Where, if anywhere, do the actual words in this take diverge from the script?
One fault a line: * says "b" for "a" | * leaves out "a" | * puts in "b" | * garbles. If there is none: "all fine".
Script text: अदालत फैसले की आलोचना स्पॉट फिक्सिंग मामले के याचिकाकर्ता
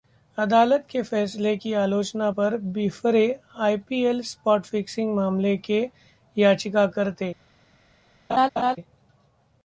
* puts in "के"
* puts in "पर बिफरे आईपीएल"